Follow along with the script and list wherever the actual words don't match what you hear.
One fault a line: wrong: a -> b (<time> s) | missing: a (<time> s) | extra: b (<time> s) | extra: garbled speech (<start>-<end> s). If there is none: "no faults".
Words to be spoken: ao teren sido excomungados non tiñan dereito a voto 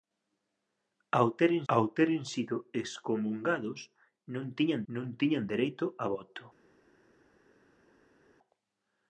extra: ao teren (1.7 s)
extra: non tiñan (4.9 s)